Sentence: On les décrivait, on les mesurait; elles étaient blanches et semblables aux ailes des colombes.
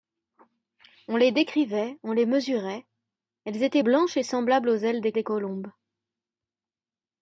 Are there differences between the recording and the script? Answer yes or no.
yes